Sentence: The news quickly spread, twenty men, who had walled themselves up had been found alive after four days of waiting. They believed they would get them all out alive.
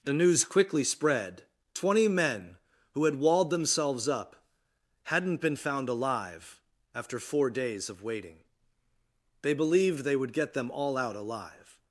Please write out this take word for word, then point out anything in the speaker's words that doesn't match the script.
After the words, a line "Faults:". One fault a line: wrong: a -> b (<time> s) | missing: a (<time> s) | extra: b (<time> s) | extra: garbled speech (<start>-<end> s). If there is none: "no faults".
The news quickly spread, twenty men, who had walled themselves up hadn't been found alive after four days of waiting. They believed they would get them all out alive.
Faults:
wrong: had -> hadn't (5.0 s)